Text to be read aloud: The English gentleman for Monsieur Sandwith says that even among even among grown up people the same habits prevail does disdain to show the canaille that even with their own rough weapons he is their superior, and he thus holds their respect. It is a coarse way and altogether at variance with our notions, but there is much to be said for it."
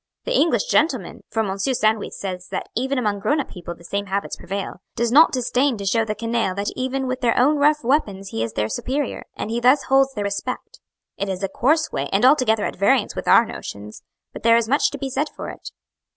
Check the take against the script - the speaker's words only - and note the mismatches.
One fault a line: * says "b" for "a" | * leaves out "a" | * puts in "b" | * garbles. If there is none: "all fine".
* leaves out "even among"
* puts in "not"